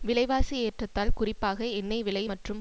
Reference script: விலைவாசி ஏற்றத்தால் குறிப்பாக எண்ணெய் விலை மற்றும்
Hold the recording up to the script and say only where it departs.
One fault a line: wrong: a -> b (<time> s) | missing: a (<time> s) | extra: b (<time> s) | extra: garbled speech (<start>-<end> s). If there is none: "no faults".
no faults